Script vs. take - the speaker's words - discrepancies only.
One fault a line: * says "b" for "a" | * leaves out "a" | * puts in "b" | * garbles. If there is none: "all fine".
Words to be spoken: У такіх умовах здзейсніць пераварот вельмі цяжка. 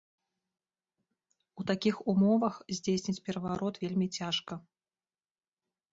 all fine